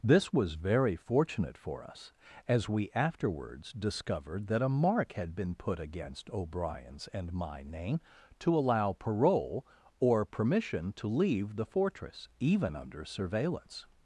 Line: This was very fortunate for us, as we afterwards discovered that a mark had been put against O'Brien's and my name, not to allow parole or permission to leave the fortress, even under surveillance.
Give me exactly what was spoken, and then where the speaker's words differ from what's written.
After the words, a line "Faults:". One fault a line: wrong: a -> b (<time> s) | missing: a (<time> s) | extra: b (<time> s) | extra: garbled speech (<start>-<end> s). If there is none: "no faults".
This was very fortunate for us, as we afterwards discovered that a mark had been put against O'Brien's and my name, to allow parole or permission to leave the fortress, even under surveillance.
Faults:
missing: not (8.0 s)